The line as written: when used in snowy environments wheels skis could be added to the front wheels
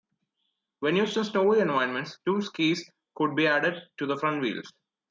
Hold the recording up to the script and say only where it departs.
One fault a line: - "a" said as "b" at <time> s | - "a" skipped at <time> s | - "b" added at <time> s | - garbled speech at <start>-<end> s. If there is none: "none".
- "wheels" said as "two" at 2.2 s